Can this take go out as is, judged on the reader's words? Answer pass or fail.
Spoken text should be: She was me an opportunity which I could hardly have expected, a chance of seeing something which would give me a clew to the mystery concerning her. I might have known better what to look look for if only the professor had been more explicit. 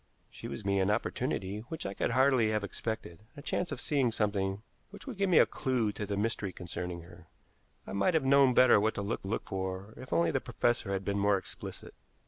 pass